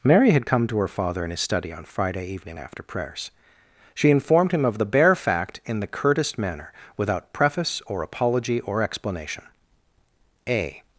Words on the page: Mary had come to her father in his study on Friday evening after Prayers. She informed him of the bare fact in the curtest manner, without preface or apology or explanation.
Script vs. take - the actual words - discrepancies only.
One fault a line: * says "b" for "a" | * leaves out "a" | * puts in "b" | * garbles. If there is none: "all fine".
* puts in "A"